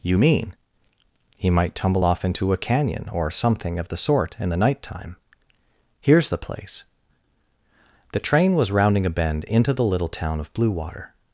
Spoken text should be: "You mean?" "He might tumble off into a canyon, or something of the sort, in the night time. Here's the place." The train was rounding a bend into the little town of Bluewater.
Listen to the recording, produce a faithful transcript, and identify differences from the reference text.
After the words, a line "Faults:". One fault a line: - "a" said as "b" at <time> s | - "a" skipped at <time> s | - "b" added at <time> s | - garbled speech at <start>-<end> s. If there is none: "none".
"You mean?" "He might tumble off into a canyon, or something of the sort, in the night time. Here's the place." The train was rounding a bend into the little town of Bluewater.
Faults:
none